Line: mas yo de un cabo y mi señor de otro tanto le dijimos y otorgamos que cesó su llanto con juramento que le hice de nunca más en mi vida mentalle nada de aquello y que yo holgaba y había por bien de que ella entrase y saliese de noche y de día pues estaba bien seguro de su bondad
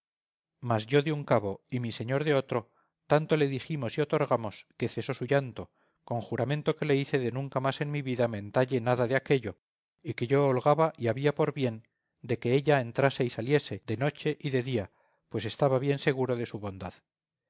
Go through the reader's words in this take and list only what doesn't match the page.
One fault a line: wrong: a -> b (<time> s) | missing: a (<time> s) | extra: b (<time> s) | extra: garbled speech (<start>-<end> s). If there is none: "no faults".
no faults